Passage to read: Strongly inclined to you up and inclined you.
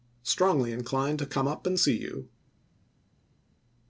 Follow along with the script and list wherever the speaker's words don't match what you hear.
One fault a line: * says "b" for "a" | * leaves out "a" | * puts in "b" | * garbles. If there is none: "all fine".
* says "come" for "you"
* says "see" for "inclined"